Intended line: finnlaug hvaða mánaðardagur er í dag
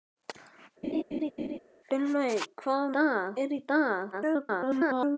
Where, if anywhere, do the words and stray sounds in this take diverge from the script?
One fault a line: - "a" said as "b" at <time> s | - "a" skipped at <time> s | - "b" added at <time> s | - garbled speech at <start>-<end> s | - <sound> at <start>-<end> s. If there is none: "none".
- laugh at 0.8-1.6 s
- "mánaðardagur" said as "dag" at 3.0 s
- garbled speech at 4.1-5.2 s